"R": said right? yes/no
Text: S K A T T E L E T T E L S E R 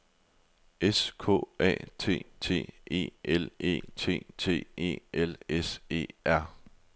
yes